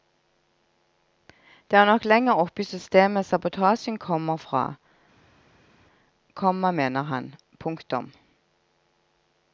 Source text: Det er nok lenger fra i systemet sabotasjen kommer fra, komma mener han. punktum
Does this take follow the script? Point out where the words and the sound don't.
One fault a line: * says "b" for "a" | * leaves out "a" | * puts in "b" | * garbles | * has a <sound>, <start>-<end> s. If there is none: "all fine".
* says "oppe" for "fra"